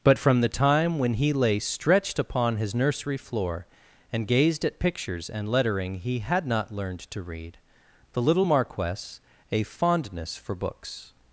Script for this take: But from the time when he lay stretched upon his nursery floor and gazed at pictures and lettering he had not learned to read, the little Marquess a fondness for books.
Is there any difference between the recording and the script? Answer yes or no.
no